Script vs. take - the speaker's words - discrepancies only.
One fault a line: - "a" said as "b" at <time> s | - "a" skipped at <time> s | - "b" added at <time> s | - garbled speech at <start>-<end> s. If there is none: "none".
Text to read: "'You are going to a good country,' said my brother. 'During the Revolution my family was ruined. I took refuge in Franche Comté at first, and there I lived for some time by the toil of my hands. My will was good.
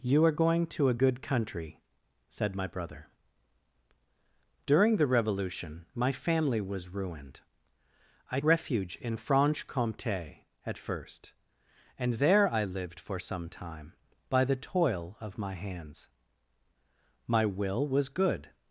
- "took" skipped at 8.4 s